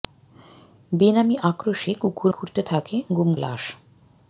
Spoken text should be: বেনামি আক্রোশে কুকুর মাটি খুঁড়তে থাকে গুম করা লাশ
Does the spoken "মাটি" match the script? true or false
false